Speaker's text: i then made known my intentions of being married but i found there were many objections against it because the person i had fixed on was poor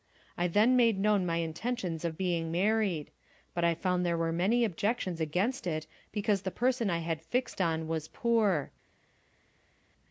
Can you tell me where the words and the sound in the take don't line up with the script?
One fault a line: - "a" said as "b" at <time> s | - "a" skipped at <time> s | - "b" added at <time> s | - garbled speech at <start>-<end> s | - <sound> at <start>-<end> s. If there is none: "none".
none